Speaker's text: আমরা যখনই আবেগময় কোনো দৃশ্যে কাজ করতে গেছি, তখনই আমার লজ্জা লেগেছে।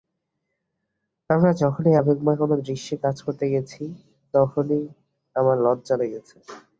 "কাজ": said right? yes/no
yes